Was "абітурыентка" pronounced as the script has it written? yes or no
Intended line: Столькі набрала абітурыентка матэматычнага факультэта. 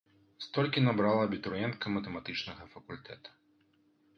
yes